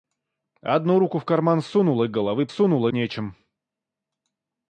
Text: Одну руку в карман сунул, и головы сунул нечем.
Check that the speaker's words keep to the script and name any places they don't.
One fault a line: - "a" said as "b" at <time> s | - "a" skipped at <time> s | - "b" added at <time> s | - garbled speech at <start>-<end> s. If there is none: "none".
none